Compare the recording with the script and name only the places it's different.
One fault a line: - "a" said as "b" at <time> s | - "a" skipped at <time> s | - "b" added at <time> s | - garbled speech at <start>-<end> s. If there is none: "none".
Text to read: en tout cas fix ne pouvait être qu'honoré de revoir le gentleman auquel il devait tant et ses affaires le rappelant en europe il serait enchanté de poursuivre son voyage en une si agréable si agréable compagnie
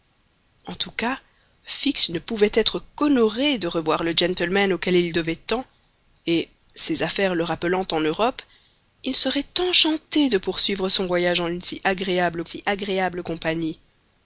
none